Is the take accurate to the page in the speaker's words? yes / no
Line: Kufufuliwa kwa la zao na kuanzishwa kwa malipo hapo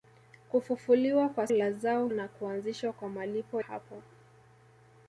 yes